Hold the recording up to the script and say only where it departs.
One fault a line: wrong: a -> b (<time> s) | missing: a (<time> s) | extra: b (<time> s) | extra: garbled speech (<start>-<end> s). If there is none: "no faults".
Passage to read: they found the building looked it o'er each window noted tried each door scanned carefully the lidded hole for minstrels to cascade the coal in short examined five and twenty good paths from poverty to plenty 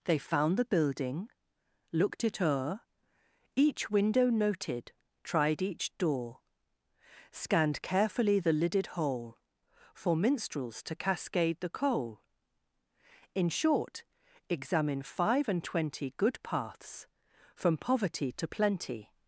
wrong: examined -> examine (14.5 s)